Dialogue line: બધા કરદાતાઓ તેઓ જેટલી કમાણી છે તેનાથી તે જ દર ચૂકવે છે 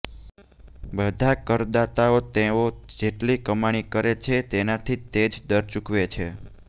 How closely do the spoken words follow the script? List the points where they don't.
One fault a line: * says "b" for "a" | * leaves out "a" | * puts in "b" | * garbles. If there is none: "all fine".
* puts in "કરે"